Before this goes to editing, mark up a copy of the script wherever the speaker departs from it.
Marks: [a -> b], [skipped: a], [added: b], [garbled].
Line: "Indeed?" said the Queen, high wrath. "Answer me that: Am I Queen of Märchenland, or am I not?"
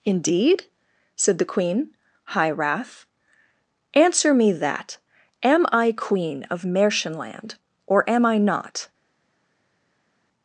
"Indeed?" said the Queen, high wrath. "Answer me that: Am I Queen of Märchenland, or am I not?"